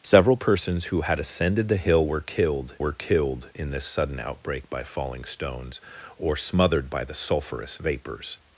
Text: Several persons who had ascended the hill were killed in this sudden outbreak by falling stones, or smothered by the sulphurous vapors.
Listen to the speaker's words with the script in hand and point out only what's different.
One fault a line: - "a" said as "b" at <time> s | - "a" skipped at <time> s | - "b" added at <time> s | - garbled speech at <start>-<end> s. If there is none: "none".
- "were killed" added at 2.8 s